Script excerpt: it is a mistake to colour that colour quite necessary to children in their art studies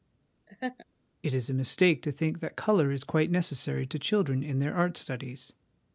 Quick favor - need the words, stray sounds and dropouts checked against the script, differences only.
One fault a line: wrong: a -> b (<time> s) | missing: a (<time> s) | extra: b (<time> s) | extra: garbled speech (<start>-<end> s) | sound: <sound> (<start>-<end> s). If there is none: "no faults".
sound: laugh (0.5-0.9 s)
wrong: colour -> think (2.1 s)
extra: is (2.9 s)